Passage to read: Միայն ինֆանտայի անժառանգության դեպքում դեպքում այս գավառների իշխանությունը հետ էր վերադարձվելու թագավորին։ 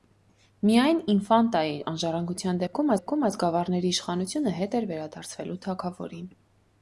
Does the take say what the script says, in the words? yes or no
yes